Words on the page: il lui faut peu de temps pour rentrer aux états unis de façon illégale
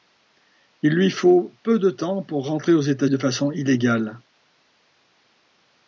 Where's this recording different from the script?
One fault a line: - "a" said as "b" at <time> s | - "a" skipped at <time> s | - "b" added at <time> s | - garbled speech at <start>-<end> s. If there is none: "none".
- "unis" skipped at 3.0 s